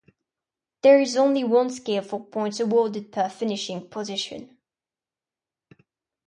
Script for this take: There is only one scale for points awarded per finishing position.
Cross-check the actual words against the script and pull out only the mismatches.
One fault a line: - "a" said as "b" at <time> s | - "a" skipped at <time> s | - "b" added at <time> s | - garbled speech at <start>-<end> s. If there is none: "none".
none